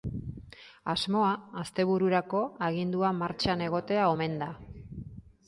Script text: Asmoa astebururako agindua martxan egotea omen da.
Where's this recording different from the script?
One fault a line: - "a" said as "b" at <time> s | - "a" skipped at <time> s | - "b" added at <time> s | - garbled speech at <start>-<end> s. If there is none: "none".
none